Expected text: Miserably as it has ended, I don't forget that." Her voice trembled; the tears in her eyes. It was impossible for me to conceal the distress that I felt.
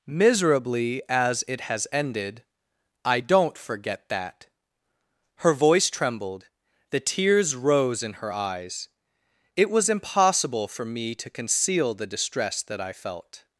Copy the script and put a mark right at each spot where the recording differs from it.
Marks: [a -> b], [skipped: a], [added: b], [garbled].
Miserably as it has ended, I don't forget that." Her voice trembled; the tears [added: rose] in her eyes. It was impossible for me to conceal the distress that I felt.